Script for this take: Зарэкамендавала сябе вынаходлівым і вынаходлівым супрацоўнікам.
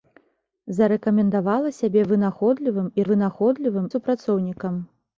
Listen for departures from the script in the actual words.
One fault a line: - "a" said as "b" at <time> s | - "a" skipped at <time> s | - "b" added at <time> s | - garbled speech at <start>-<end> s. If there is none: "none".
none